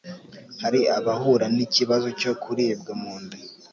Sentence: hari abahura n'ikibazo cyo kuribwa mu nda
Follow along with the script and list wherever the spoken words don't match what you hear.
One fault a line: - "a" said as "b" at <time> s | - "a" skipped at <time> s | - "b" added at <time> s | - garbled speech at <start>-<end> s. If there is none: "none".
none